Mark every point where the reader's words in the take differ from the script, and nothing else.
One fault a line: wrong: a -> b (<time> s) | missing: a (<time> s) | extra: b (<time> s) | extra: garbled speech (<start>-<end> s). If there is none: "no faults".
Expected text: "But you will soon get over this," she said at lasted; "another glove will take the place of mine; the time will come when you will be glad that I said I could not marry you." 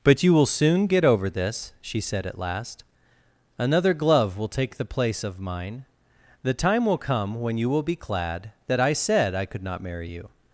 wrong: lasted -> last (2.4 s)